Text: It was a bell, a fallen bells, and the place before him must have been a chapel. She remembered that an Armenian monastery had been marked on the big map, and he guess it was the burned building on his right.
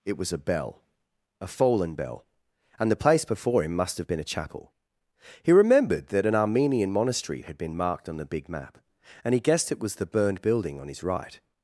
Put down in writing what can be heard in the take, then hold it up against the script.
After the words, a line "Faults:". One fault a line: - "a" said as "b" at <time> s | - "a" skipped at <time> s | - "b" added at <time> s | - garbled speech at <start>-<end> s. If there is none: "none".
It was a bell, a fallen bell, and the place before him must have been a chapel. He remembered that an Armenian monastery had been marked on the big map, and he guessed it was the burned building on his right.
Faults:
- "bells" said as "bell" at 1.9 s
- "She" said as "He" at 5.4 s
- "guess" said as "guessed" at 9.4 s